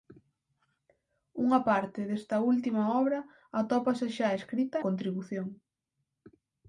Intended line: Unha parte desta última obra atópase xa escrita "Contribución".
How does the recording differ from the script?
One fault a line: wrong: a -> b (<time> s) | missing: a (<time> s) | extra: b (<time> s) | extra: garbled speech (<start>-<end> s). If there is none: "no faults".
no faults